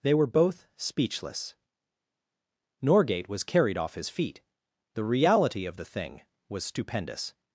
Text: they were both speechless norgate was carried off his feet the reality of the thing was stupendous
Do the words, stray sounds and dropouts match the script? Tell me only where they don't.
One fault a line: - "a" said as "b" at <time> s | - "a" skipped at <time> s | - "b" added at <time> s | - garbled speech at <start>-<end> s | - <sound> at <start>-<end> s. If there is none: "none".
none